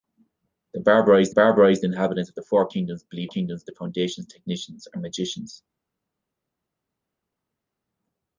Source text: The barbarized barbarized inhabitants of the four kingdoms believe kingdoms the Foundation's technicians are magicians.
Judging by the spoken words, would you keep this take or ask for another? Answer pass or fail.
pass